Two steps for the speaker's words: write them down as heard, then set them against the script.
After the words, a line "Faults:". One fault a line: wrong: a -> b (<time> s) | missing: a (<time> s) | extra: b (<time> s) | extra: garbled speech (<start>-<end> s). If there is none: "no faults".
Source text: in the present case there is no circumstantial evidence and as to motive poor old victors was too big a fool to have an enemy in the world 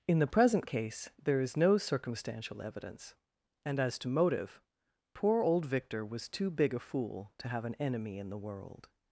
in the present case there is no circumstantial evidence and as to motive poor old victor was too big a fool to have an enemy in the world
Faults:
wrong: victors -> victor (5.7 s)